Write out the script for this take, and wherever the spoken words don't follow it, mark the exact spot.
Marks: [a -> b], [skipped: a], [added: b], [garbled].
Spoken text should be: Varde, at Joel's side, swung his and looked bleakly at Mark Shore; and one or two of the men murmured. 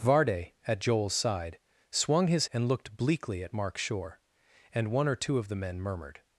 Varde, at Joel's side, swung his and looked bleakly at Mark Shore; and one or two of the men murmured.